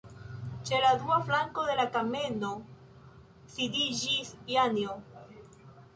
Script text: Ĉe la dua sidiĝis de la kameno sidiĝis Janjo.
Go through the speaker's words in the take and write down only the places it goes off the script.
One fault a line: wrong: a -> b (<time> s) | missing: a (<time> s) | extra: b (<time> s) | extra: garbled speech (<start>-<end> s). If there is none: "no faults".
wrong: sidiĝis -> flanko (1.3 s)